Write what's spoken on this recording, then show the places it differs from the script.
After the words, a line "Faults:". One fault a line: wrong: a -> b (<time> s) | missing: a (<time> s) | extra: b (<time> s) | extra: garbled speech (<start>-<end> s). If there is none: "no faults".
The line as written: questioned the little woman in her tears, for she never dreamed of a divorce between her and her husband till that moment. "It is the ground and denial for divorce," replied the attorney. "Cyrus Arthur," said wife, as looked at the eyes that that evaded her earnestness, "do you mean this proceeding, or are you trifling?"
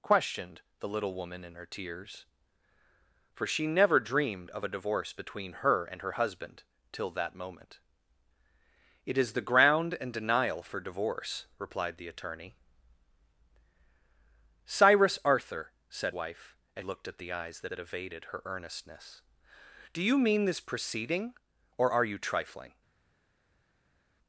questioned the little woman in her tears, for she never dreamed of a divorce between her and her husband till that moment. "It is the ground and denial for divorce," replied the attorney. "Cyrus Arthur," said wife, as looked at the eyes that that evaded her earnestness, "do you mean this proceeding, or are you trifling?"
Faults:
no faults